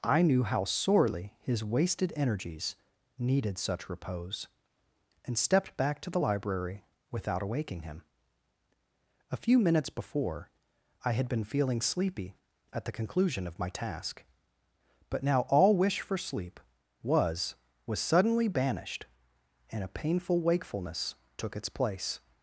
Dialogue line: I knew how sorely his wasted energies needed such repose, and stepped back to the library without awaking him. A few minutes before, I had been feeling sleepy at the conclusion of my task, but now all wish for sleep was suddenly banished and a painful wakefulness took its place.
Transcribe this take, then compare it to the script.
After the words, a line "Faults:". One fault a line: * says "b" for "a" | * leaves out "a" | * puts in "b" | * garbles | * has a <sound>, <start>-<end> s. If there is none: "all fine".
I knew how sorely his wasted energies needed such repose, and stepped back to the library without awaking him. A few minutes before, I had been feeling sleepy at the conclusion of my task, but now all wish for sleep was was suddenly banished and a painful wakefulness took its place.
Faults:
* puts in "was"